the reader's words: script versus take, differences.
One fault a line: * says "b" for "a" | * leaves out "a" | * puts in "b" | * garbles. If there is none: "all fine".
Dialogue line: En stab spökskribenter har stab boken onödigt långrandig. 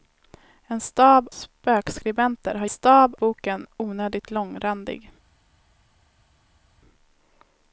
all fine